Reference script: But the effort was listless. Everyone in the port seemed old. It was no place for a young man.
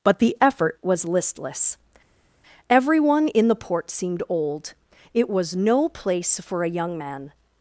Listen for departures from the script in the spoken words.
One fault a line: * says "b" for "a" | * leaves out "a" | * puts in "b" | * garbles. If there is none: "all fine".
all fine